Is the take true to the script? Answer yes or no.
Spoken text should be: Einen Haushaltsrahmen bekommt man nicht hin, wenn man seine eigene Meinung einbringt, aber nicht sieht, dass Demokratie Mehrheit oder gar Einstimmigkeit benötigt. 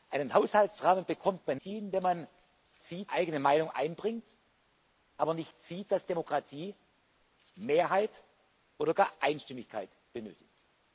no